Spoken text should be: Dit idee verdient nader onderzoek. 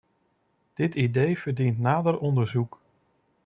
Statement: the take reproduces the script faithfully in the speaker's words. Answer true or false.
true